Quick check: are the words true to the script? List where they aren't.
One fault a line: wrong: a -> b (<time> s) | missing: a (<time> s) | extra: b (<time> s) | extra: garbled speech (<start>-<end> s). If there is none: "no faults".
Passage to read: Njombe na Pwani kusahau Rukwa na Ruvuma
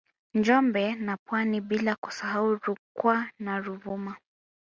extra: bila (1.6 s)